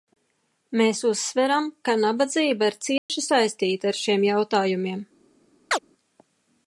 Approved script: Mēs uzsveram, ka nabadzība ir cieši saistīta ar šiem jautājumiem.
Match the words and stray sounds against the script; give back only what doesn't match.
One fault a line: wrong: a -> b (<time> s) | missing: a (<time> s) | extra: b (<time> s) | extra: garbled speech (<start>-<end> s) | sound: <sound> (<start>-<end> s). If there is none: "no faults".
sound: dropout (3.0-3.1 s)
sound: chirp (5.7-5.8 s)